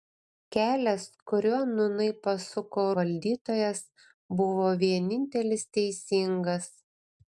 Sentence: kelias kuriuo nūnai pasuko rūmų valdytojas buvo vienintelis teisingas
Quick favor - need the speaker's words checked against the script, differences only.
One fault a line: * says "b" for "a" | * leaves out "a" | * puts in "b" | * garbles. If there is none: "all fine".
* leaves out "rūmų"